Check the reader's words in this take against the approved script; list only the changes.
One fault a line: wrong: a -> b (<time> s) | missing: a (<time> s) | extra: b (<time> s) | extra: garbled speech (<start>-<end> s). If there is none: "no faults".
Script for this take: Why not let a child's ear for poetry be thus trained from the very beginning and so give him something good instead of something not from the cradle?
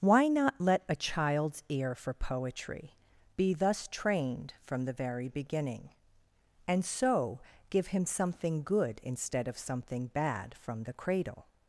wrong: not -> bad (10.1 s)